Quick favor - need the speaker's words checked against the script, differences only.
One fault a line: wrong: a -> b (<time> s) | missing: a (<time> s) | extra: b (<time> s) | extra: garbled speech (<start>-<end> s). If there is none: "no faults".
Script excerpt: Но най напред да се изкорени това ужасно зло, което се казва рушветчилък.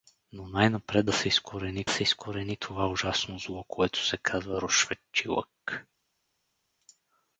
extra: се изкорени (1.9 s)